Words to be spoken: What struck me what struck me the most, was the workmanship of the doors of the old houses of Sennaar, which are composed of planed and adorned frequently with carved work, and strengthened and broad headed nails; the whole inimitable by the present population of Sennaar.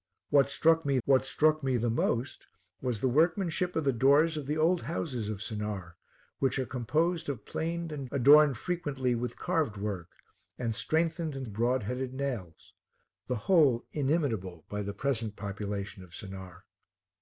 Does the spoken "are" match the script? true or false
true